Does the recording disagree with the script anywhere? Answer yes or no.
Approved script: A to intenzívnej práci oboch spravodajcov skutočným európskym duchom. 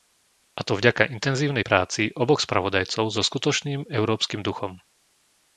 yes